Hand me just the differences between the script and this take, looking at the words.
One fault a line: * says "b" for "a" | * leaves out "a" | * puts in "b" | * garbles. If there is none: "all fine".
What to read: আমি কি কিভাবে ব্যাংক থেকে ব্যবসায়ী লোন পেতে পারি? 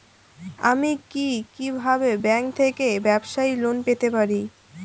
all fine